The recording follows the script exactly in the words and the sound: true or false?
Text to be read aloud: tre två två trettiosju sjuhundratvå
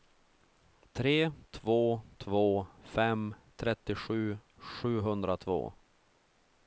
false